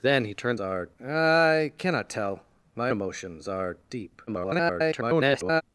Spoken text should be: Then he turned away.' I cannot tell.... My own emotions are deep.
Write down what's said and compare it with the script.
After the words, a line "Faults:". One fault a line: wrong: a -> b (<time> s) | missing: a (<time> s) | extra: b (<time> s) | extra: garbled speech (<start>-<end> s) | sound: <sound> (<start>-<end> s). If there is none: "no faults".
Then he turned are.' I cannot tell.... My emotions are deep. [garbled]
Faults:
wrong: away -> are (0.6 s)
missing: own (2.9 s)
extra: garbled speech (4.3-5.6 s)